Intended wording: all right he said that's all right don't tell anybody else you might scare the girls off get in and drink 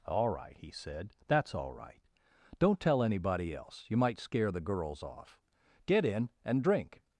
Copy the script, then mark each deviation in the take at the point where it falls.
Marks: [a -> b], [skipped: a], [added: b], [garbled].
all right he said that's all right don't tell anybody else you might scare the girls off get in and drink